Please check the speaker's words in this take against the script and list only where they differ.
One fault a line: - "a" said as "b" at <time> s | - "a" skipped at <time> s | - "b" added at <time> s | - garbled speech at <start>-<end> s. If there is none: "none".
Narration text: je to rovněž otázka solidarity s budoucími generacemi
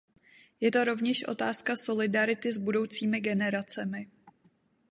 none